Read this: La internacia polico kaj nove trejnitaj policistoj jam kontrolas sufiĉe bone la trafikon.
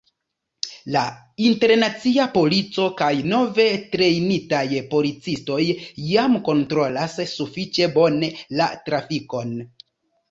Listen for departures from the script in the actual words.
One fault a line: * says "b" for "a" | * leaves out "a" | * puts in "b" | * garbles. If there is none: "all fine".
all fine